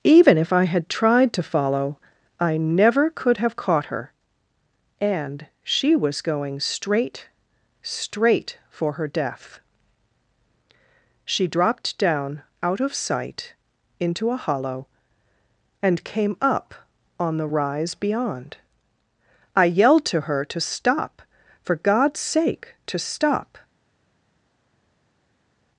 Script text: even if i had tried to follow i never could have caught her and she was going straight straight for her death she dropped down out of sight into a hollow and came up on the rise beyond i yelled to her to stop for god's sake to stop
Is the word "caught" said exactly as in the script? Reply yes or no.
yes